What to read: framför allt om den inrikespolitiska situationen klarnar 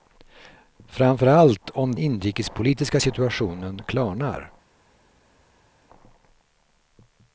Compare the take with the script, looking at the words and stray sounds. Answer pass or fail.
fail